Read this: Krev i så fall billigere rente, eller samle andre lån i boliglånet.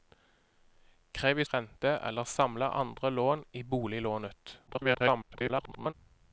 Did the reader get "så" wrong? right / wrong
wrong